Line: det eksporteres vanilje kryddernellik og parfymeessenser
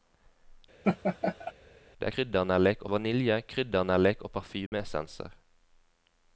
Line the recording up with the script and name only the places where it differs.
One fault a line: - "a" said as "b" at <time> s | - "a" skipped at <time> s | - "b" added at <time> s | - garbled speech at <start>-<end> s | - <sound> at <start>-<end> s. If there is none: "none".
- laugh at 0.8-1.5 s
- "eksporteres" said as "kryddernellik" at 2.1 s
- dropout at 4.7-4.7 s